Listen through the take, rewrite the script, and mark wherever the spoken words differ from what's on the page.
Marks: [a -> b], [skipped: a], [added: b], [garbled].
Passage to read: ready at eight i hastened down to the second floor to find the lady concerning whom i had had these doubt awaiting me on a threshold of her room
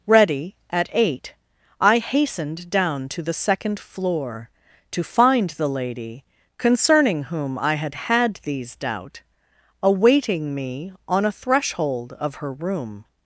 ready at eight i hastened down to the second floor to find the lady concerning whom i had had these doubt awaiting me on a threshold of her room